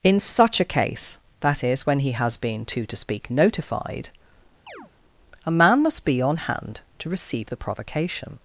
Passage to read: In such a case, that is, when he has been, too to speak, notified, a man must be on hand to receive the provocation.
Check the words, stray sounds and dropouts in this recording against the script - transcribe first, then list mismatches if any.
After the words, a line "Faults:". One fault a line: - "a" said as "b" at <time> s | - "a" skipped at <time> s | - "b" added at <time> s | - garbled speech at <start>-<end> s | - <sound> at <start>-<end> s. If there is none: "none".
In such a case, that is, when he has been, too to speak, notified, a man must be on hand to receive the provocation.
Faults:
- chirp at 4.7-4.9 s